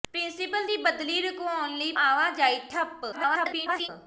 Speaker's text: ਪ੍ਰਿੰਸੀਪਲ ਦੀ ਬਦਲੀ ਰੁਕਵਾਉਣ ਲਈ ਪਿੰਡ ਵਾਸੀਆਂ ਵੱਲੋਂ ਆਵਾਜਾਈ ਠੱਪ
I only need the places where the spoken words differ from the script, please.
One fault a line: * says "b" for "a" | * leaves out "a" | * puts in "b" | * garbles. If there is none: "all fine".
* leaves out "ਪਿੰਡ ਵਾਸੀਆਂ ਵੱਲੋਂ"
* garbles